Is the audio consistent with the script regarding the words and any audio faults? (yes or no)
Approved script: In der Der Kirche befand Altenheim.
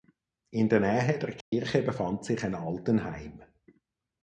no